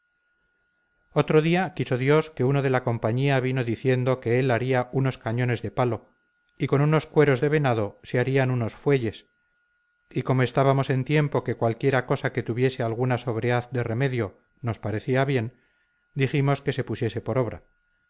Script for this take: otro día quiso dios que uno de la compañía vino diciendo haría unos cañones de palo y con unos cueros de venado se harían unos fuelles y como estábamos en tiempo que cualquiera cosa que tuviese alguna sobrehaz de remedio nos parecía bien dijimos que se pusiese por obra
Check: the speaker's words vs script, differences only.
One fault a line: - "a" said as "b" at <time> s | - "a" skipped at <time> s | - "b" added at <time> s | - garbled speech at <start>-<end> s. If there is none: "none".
- "que él" added at 4.2 s